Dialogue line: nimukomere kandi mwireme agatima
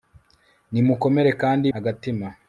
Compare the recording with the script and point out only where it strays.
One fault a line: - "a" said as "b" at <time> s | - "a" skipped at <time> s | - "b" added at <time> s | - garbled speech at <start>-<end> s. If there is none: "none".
- "mwireme" skipped at 1.7 s